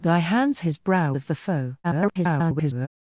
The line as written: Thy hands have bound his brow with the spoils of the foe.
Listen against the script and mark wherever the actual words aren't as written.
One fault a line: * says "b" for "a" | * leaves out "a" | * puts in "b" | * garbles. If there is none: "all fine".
* leaves out "have bound"
* leaves out "with the spoils"
* garbles